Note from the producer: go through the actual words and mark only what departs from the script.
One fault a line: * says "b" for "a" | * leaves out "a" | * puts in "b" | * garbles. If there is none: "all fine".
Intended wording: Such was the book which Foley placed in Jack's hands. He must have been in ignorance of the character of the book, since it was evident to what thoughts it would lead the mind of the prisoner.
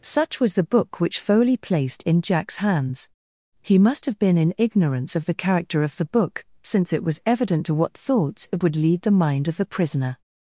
all fine